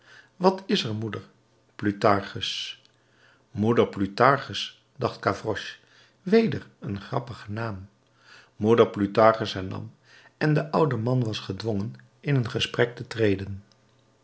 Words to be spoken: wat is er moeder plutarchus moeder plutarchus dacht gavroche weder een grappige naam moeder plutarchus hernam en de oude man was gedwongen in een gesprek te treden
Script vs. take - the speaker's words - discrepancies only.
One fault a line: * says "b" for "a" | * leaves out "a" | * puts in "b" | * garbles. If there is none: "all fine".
all fine